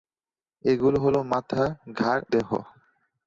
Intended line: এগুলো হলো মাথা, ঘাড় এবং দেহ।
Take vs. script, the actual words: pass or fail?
fail